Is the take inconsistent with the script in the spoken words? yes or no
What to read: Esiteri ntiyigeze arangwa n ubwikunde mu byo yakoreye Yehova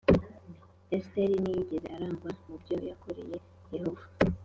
yes